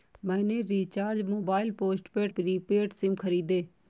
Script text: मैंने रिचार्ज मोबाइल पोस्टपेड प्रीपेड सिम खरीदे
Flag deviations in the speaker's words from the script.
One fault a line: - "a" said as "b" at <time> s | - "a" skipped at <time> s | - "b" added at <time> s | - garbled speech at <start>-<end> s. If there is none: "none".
none